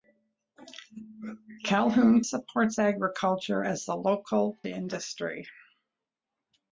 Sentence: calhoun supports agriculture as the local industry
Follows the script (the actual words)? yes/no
yes